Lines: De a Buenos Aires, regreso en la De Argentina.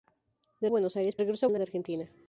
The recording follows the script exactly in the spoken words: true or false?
true